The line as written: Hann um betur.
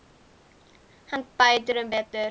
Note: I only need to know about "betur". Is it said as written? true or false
true